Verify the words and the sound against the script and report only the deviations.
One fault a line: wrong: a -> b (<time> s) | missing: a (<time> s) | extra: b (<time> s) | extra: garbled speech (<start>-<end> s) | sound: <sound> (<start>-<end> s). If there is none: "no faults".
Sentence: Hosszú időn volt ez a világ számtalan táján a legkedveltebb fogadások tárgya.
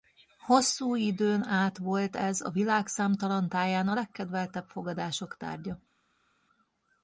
extra: át (1.4 s)